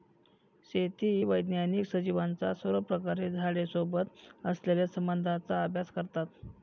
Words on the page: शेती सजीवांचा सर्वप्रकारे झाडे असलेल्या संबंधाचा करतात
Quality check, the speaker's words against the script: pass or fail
fail